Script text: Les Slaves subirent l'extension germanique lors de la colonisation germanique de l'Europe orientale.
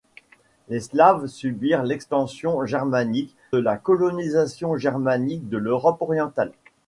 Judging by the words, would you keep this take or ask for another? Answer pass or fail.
fail